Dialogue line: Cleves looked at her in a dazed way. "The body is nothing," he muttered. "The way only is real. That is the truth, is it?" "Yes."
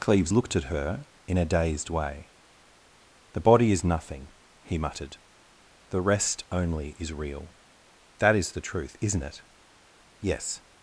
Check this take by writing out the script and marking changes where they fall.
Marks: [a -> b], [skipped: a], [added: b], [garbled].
Cleves looked at her in a dazed way. "The body is nothing," he muttered. "The [way -> rest] only is real. That is the truth, [is -> isn't] it?" "Yes."